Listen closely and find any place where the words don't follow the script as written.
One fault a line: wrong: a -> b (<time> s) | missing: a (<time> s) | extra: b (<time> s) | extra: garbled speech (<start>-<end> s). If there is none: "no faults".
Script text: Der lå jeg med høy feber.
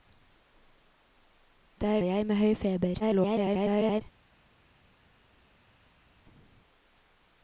missing: lå (2.0 s)
extra: garbled speech (3.0-4.0 s)